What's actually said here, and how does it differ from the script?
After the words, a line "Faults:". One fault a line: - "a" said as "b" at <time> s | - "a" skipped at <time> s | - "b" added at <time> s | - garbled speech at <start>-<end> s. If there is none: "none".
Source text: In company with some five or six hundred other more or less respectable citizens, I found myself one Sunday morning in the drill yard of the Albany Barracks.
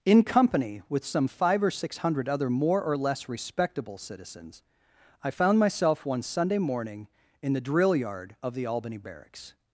In company with some five or six hundred other more or less respectable citizens, I found myself one Sunday morning in the drill yard of the Albany Barracks.
Faults:
none